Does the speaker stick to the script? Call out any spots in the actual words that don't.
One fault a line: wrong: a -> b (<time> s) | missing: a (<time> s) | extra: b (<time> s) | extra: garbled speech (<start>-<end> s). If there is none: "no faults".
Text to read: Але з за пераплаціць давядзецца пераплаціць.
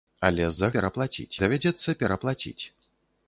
no faults